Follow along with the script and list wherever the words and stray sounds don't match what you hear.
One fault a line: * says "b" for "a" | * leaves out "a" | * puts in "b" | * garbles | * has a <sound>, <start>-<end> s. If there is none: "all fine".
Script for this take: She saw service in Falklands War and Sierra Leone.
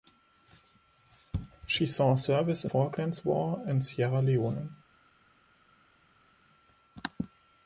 all fine